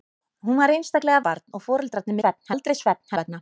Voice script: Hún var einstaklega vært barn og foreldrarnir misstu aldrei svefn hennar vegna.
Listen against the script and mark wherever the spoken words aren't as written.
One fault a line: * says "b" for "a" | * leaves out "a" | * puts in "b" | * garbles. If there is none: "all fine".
* leaves out "vært"
* says "svefn" for "misstu"
* leaves out "hennar"